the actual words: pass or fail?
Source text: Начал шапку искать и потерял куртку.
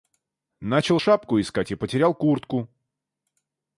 pass